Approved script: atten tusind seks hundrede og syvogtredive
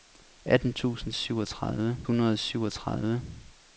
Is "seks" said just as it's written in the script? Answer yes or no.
no